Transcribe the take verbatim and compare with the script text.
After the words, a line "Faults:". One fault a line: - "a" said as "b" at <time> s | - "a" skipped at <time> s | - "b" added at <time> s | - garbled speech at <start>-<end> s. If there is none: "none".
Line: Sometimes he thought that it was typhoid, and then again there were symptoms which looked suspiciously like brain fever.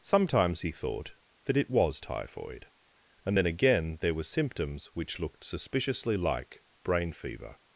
Sometimes he thought that it was typhoid, and then again there were symptoms which looked suspiciously like brain fever.
Faults:
none